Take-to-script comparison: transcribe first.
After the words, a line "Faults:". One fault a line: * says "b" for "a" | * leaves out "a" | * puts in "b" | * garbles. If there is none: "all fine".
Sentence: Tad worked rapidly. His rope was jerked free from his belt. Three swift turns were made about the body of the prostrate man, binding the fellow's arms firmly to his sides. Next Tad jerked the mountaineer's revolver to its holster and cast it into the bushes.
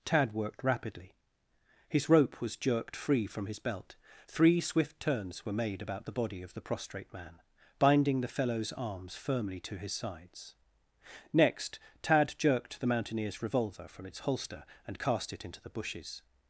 Tad worked rapidly. His rope was jerked free from his belt. Three swift turns were made about the body of the prostrate man, binding the fellow's arms firmly to his sides. Next Tad jerked the mountaineer's revolver from its holster and cast it into the bushes.
Faults:
* says "from" for "to"